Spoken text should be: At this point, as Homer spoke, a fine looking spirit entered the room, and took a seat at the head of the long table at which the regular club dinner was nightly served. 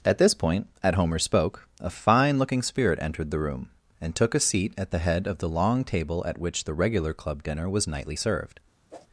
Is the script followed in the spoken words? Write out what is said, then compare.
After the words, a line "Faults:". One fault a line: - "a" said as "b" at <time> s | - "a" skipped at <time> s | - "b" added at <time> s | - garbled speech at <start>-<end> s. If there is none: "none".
At this point, at Homer spoke, a fine looking spirit entered the room, and took a seat at the head of the long table at which the regular club dinner was nightly served.
Faults:
- "as" said as "at" at 0.8 s